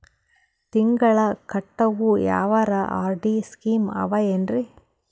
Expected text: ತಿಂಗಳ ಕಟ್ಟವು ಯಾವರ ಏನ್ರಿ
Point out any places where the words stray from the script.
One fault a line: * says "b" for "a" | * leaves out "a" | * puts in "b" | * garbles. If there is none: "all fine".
* puts in "ಆರ್.ಡಿ ಸ್ಕೀಮ ಆವ"